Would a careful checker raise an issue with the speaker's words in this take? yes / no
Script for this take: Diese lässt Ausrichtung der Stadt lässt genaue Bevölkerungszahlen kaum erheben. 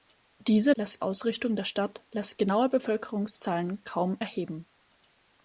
no